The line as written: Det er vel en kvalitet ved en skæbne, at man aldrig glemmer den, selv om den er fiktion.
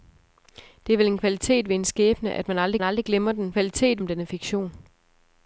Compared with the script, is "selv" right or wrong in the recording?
wrong